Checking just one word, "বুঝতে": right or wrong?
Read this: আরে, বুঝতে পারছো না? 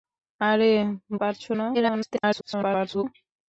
wrong